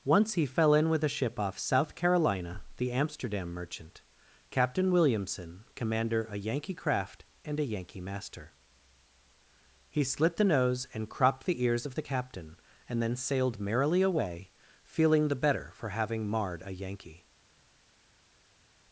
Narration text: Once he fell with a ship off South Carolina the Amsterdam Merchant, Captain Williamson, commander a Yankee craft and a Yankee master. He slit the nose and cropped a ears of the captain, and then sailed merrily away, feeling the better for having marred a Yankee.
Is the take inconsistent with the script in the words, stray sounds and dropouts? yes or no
yes